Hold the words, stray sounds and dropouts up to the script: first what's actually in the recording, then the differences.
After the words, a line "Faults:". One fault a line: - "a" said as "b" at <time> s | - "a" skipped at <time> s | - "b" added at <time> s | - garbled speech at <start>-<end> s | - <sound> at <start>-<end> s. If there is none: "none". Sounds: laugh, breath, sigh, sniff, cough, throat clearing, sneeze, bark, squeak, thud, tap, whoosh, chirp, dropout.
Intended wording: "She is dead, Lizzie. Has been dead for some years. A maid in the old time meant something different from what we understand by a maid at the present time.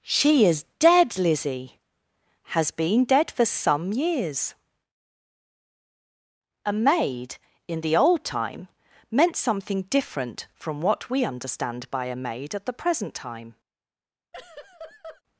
"She is dead, Lizzie. Has been dead for some years. A maid in the old time meant something different from what we understand by a maid at the present time.
Faults:
- laugh at 14.3-15.2 s